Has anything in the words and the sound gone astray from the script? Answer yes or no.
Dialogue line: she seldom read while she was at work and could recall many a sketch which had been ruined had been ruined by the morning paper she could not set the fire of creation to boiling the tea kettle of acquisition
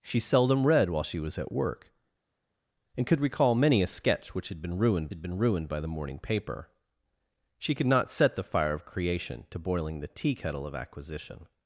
no